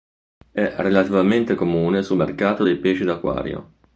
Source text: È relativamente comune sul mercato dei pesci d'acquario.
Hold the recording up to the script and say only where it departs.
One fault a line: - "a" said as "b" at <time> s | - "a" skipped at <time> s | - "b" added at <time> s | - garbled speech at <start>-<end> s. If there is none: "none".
none